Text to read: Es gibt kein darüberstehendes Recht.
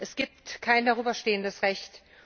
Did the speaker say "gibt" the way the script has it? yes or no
yes